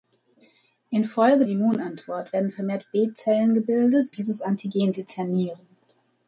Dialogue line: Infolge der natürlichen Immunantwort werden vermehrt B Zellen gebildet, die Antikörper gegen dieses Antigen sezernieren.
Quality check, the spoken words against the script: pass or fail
fail